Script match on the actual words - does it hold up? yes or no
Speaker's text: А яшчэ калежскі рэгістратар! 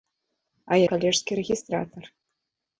no